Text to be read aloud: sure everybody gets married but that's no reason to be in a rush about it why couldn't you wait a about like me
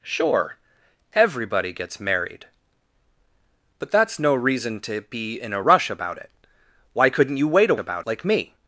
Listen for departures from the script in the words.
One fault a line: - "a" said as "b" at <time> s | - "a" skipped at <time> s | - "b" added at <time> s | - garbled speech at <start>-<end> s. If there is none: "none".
none